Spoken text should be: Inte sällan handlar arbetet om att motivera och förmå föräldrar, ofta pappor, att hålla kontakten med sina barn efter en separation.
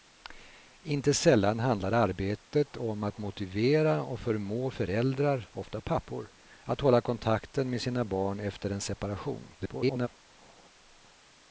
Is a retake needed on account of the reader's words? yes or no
yes